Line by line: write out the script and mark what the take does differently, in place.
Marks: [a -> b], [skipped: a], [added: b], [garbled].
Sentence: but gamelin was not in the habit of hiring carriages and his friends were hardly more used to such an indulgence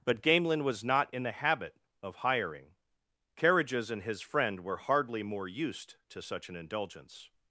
but gamelin was not in the habit of hiring carriages and his [friends -> friend] were hardly more used to such an indulgence